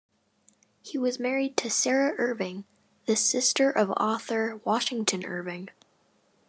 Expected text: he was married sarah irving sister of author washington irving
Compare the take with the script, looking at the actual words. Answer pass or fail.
fail